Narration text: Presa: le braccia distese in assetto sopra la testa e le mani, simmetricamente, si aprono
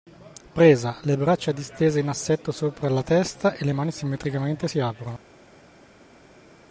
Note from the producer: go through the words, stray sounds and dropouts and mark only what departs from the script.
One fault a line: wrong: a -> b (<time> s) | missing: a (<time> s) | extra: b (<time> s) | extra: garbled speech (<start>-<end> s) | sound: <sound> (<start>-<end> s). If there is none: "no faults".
no faults